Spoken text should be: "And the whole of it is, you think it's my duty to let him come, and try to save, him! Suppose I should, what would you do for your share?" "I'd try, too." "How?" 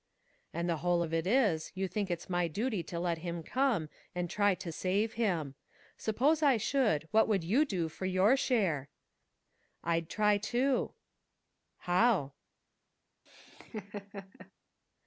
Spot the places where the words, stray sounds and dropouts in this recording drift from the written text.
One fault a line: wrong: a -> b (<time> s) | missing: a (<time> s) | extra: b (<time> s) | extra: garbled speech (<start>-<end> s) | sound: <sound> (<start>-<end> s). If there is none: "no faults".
sound: laugh (13.3-14.5 s)